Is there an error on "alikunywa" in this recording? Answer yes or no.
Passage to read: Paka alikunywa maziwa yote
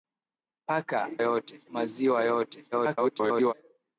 yes